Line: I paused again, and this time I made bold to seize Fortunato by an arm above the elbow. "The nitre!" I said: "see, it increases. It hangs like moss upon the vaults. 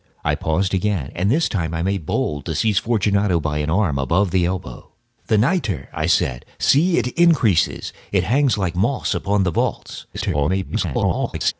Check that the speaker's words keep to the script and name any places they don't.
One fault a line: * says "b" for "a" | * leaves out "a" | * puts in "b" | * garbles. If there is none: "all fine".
* garbles